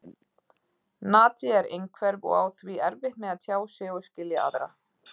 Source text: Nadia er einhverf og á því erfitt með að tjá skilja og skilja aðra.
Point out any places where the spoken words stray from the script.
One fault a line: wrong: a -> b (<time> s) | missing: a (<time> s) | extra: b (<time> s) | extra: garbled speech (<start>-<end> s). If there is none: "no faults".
wrong: skilja -> sig (3.8 s)